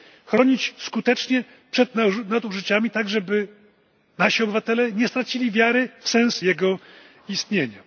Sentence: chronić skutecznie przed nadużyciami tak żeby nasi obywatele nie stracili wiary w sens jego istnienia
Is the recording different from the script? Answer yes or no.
no